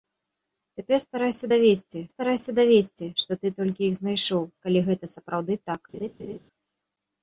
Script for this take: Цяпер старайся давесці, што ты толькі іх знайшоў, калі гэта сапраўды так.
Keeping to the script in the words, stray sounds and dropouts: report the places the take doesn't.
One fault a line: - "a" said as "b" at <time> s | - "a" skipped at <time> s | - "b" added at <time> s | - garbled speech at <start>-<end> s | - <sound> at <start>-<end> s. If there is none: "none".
- "старайся давесці" added at 2.1 s
- laugh at 5.9-6.4 s